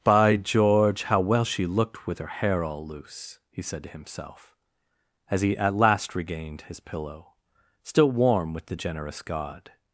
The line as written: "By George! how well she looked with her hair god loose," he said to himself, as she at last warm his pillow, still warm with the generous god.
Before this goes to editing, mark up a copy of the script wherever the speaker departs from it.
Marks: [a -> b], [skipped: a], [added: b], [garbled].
"By George! how well she looked with her hair [god -> all] loose," he said to himself, as [she -> he] at last [warm -> regained] his pillow, still warm with the generous god.